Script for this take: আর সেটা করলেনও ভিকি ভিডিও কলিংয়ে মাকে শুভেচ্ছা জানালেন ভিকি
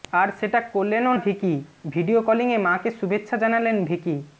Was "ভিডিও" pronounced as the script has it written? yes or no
yes